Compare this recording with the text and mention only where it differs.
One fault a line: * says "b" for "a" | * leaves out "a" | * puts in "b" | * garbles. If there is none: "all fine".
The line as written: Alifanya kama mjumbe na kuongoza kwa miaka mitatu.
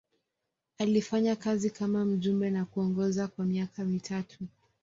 * puts in "kazi"